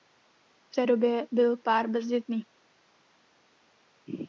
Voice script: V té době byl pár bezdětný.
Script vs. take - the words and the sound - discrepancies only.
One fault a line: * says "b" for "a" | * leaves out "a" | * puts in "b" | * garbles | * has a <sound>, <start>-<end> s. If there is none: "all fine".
all fine